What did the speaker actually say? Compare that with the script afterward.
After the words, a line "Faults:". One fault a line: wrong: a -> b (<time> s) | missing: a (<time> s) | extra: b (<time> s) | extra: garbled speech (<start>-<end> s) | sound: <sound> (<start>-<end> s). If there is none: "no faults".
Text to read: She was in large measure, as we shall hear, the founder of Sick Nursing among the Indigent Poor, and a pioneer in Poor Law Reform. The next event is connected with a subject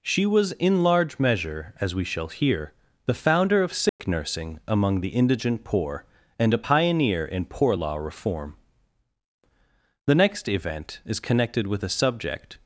She was in large measure, as we shall hear, the founder of Sick Nursing among the Indigent Poor, and a pioneer in Poor Law Reform. The next event is connected with a subject
Faults:
sound: dropout (3.9-4.0 s)